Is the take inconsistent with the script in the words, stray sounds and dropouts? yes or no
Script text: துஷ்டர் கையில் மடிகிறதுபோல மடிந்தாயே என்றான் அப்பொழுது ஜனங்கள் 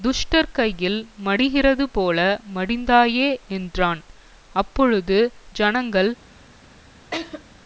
yes